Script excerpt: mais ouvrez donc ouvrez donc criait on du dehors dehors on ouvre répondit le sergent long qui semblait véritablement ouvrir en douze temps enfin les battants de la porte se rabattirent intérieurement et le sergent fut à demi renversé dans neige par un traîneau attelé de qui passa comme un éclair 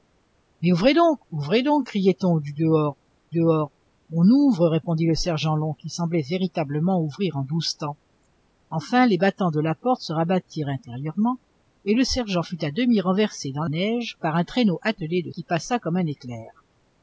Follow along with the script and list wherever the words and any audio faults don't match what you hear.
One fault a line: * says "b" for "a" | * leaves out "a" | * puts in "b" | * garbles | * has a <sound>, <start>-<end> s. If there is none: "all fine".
all fine